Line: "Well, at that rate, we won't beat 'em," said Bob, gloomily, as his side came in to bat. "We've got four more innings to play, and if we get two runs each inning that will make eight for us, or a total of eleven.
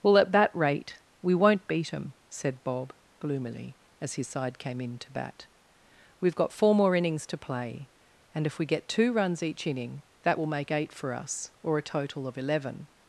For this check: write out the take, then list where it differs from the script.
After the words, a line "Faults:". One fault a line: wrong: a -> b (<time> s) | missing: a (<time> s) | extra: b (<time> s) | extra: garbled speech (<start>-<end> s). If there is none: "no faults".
"Well, at that rate, we won't beat 'em," said Bob, gloomily, as his side came in to bat. "We've got four more innings to play, and if we get two runs each inning that will make eight for us, or a total of eleven.
Faults:
no faults